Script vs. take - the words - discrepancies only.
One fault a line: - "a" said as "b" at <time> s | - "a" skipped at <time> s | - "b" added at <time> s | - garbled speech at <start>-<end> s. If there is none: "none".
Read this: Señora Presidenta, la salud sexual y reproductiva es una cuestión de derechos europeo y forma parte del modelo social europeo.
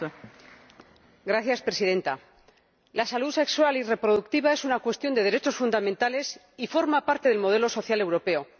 - "europeo" said as "fundamentales" at 5.6 s